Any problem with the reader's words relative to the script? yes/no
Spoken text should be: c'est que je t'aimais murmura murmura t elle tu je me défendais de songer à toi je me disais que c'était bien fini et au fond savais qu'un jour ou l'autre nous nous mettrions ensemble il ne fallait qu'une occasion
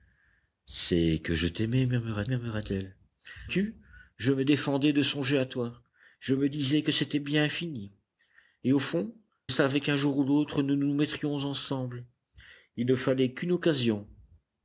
no